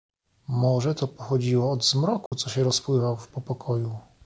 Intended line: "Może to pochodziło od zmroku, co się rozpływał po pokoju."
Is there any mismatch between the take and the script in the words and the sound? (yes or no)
yes